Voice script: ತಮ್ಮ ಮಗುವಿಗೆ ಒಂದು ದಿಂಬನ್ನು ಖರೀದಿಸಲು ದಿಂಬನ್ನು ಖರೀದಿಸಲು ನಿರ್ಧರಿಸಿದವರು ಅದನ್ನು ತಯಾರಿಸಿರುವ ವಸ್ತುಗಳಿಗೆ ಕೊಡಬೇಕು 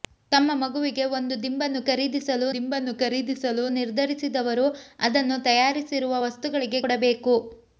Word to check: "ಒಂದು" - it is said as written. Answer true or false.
true